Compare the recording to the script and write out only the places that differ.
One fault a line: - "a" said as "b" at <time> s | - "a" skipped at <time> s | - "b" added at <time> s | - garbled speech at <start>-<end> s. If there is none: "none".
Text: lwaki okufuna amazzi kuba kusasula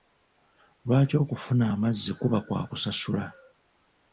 - "kwa" added at 2.4 s